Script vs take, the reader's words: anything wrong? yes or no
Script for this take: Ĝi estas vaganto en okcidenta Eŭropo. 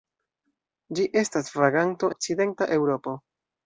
yes